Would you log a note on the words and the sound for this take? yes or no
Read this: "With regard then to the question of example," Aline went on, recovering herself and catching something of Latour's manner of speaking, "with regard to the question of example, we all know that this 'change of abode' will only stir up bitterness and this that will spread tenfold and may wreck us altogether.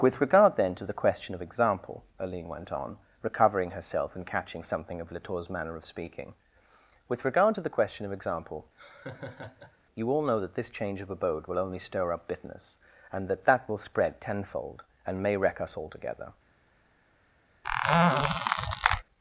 yes